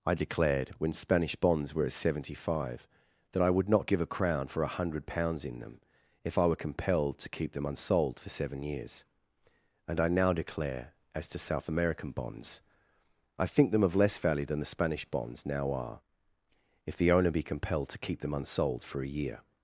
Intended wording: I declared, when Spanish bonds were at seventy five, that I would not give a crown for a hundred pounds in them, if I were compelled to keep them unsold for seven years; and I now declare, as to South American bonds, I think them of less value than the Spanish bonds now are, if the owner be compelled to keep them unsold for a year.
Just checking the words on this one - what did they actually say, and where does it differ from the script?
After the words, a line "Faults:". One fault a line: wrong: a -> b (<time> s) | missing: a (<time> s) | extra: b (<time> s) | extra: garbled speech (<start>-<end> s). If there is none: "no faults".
I declared, when Spanish bonds were at seventy five, that I would not give a crown for a hundred pounds in them, if I were compelled to keep them unsold for seven years; and I now declare, as to South American bonds, I think them of less value than the Spanish bonds now are, if the owner be compelled to keep them unsold for a year.
Faults:
no faults